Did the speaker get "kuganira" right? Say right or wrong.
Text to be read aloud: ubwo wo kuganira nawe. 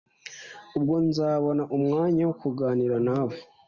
right